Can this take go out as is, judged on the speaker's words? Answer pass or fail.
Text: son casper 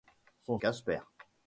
pass